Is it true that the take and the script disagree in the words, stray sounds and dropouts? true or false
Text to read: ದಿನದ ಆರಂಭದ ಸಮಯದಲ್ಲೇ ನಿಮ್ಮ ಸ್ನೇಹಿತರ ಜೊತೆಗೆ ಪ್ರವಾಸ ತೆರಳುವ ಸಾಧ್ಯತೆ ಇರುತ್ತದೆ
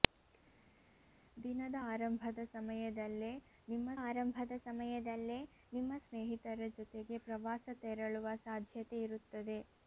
true